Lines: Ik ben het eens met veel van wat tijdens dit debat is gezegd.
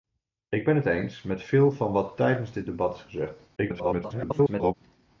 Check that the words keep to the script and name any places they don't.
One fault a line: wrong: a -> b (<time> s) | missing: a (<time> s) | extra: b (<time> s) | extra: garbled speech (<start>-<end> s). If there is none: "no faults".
extra: garbled speech (3.6-4.7 s)